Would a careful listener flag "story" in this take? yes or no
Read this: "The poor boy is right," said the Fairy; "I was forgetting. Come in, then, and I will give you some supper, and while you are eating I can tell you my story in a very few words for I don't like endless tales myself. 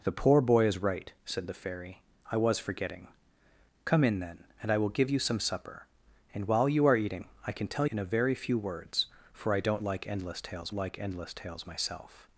yes